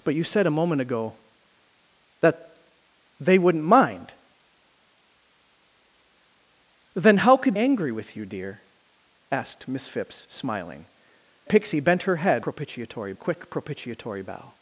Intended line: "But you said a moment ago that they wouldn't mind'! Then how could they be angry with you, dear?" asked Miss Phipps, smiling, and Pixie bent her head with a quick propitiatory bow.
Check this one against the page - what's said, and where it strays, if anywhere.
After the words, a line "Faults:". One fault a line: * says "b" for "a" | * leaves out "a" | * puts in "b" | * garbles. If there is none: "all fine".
"But you said a moment ago that they wouldn't mind'! Then how could angry with you, dear?" asked Miss Phipps, smiling, Pixie bent her head propitiatory a quick propitiatory bow.
Faults:
* leaves out "they be"
* leaves out "and"
* says "propitiatory" for "with"